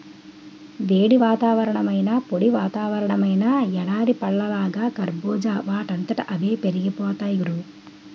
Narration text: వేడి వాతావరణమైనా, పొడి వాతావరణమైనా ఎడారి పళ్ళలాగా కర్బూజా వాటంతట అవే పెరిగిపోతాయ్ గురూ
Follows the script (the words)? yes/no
yes